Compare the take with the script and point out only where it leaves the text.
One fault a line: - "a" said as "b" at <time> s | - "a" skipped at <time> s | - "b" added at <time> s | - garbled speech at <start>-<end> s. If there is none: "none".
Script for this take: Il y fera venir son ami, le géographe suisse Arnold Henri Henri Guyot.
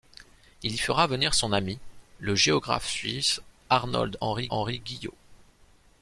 none